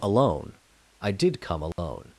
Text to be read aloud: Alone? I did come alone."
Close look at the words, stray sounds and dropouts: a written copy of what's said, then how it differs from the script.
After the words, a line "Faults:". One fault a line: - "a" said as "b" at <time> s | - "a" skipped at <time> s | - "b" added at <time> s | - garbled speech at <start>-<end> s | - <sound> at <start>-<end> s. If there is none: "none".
Alone? I did come alone."
Faults:
- dropout at 1.7-1.8 s